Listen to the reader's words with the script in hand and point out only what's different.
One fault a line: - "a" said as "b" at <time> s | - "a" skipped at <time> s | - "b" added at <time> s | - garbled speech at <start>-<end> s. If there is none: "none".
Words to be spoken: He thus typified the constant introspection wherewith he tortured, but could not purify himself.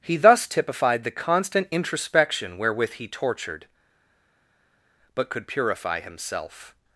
- "not" skipped at 5.5 s